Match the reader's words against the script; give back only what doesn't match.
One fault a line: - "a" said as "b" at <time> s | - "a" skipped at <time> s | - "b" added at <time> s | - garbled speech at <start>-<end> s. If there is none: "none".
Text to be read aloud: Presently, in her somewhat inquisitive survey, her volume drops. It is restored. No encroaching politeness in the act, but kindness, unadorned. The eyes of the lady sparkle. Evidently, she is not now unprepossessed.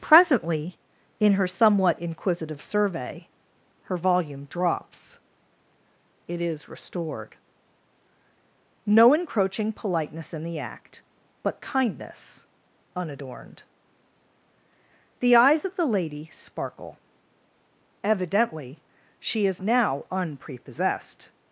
- "not" skipped at 19.6 s